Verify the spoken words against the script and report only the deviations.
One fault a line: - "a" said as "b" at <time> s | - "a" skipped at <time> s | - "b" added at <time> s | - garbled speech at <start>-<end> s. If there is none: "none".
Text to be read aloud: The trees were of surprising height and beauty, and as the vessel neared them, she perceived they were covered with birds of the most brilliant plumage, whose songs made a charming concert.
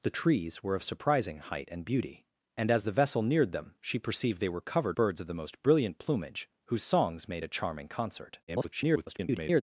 - "with" skipped at 5.0 s
- garbled speech at 8.5-9.6 s